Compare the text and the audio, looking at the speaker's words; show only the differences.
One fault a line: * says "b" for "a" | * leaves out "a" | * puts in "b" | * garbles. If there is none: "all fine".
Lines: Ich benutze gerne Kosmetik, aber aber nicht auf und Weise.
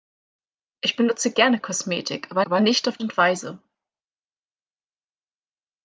all fine